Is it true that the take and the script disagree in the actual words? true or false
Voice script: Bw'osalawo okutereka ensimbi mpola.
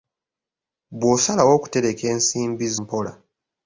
false